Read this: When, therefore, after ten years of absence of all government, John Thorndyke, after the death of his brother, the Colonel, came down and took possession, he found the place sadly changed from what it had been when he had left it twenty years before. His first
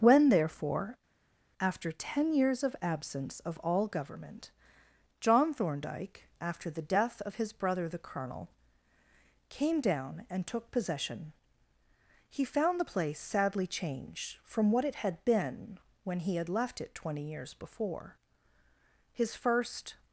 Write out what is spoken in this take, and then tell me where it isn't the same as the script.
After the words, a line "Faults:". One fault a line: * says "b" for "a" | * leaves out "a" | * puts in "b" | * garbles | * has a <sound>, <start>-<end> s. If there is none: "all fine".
When, therefore, after ten years of absence of all government, John Thorndyke, after the death of his brother, the Colonel, came down and took possession, he found the place sadly changed from what it had been when he had left it twenty years before. His first
Faults:
all fine